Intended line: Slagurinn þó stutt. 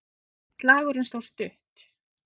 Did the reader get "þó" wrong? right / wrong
right